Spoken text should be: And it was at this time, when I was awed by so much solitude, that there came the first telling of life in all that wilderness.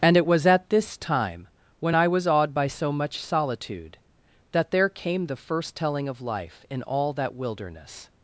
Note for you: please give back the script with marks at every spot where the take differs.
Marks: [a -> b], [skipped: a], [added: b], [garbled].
And it was at this time, when I was awed by so much solitude, that there came the first telling of life in all that wilderness.